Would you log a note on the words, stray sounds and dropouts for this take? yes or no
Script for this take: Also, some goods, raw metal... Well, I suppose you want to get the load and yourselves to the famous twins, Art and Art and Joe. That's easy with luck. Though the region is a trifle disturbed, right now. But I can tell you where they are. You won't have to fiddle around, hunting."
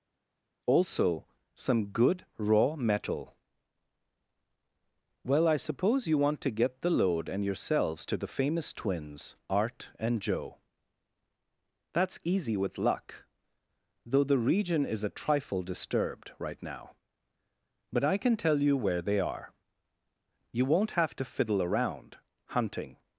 yes